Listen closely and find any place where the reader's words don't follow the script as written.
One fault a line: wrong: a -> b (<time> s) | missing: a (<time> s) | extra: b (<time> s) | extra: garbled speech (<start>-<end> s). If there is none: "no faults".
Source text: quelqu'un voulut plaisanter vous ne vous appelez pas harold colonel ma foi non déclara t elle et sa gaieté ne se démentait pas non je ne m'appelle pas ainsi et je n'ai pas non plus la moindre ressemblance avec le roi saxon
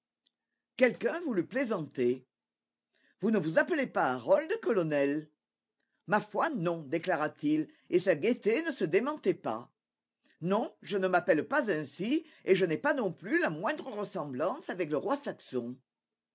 wrong: elle -> il (7.5 s)